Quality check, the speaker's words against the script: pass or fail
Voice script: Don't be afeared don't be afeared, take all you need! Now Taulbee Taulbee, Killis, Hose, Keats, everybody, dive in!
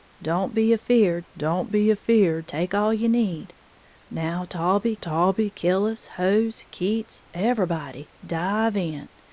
pass